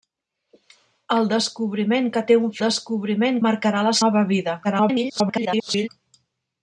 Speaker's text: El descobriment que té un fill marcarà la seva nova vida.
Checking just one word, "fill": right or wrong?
wrong